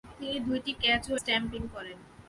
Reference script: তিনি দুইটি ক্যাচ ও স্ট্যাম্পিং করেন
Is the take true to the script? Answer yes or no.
yes